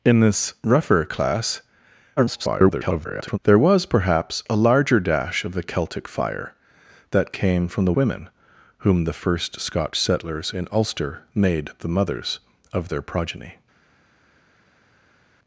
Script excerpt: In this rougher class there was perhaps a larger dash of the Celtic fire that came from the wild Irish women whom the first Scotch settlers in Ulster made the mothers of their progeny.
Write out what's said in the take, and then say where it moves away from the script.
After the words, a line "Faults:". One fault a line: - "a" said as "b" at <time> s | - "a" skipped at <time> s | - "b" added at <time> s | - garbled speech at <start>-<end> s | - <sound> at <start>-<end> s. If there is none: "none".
In this rougher class [garbled] there was perhaps a larger dash of the Celtic fire that came from the women whom the first Scotch settlers in Ulster made the mothers of their progeny.
Faults:
- garbled speech at 2.2-3.4 s
- "wild Irish" skipped at 7.9 s